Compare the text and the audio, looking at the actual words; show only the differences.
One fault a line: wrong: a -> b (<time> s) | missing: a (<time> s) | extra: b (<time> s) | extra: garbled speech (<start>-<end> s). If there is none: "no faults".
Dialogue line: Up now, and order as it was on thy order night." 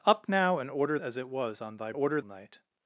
no faults